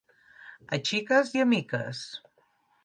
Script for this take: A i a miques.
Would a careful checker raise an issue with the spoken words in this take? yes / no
yes